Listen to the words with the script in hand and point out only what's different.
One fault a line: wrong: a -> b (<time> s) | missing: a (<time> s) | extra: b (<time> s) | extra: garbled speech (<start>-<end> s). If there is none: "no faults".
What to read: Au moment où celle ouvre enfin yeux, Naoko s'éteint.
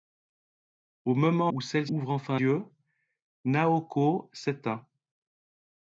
no faults